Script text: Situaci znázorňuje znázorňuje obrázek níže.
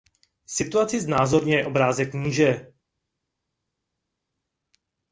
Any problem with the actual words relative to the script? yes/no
yes